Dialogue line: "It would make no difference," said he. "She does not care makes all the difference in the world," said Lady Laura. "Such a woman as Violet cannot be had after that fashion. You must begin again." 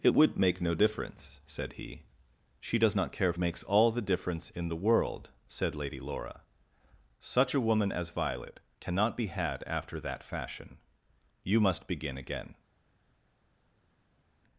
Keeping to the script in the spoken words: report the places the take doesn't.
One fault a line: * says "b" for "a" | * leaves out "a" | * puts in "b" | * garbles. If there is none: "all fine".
all fine